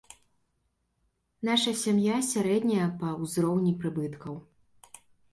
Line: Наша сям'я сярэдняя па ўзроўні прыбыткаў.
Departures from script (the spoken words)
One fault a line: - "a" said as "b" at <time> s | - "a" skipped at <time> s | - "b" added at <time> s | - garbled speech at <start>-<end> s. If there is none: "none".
none